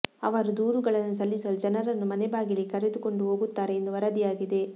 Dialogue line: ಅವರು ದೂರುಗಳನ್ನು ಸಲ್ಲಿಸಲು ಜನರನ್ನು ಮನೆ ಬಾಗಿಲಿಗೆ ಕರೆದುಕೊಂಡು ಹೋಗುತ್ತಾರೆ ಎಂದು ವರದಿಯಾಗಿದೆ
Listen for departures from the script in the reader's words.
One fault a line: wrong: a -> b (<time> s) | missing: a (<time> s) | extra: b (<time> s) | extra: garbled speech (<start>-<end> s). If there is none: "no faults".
no faults